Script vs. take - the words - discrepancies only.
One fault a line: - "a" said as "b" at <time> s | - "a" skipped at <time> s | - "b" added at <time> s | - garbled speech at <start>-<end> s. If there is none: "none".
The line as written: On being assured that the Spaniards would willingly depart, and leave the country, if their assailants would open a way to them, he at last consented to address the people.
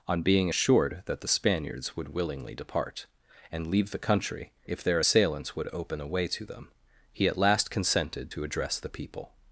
none